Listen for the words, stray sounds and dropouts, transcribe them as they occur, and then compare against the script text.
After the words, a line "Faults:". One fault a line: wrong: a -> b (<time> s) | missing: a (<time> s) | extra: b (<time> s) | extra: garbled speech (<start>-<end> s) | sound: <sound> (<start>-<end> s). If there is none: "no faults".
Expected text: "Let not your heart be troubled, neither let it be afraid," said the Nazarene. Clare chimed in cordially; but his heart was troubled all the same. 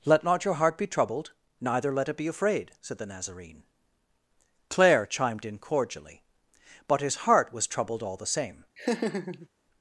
"Let not your heart be troubled, neither let it be afraid," said the Nazarene. Clare chimed in cordially; but his heart was troubled all the same.
Faults:
sound: laugh (8.8-9.5 s)